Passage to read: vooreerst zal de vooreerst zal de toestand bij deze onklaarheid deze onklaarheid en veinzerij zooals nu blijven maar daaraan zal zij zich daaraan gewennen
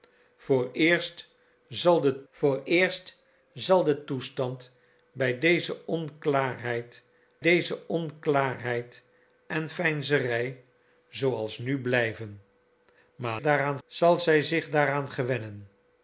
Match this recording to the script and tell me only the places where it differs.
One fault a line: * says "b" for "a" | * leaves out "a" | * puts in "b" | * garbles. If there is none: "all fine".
all fine